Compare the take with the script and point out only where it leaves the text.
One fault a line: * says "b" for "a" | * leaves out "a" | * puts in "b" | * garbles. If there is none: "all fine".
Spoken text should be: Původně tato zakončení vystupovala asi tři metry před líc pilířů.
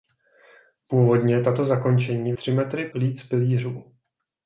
* leaves out "vystupovala asi"
* leaves out "před"